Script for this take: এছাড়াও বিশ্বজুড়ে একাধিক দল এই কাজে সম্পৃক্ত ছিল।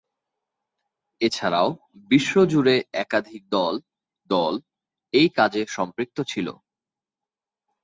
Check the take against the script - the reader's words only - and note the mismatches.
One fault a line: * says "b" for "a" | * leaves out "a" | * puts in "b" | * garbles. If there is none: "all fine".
* puts in "দল"